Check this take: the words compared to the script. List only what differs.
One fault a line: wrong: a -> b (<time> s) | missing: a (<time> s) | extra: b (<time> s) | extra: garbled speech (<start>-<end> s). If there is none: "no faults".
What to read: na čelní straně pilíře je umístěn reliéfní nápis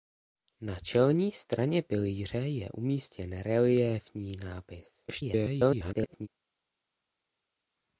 extra: garbled speech (5.1-6.3 s)